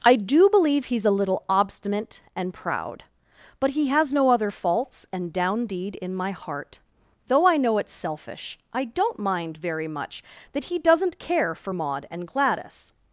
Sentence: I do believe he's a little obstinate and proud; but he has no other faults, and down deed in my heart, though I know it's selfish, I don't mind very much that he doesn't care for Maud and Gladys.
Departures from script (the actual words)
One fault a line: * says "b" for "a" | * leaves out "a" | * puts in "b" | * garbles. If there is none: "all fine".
all fine